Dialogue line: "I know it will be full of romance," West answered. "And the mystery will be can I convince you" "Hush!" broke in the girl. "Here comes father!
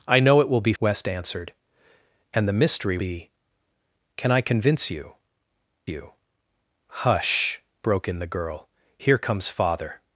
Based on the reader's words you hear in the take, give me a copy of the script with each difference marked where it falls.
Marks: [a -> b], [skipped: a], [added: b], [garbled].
"I know it will be [skipped: full of romance,"] West answered. "And the mystery [skipped: will] be can I convince you" [added: you] "Hush!" broke in the girl. "Here comes father!